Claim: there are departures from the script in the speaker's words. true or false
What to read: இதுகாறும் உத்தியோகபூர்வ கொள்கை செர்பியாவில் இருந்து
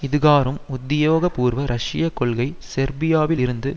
true